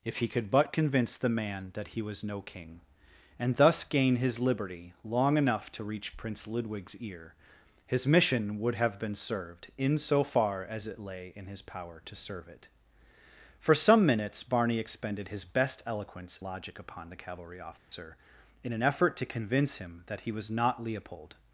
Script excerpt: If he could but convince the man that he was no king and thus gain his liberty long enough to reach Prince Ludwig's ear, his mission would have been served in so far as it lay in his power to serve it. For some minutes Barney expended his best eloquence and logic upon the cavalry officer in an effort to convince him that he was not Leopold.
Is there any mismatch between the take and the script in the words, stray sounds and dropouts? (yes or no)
yes